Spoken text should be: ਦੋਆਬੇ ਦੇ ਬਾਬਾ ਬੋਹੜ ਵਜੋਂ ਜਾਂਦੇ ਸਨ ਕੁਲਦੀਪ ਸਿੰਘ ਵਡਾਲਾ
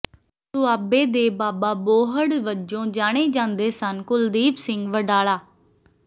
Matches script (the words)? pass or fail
fail